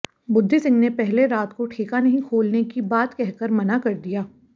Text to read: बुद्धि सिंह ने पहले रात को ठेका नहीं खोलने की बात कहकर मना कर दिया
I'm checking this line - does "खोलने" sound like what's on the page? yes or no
yes